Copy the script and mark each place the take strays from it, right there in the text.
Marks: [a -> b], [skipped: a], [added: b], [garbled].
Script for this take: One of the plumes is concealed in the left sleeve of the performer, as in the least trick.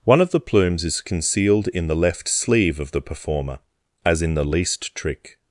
One of the plumes is concealed in the left sleeve of the performer, as in the least trick.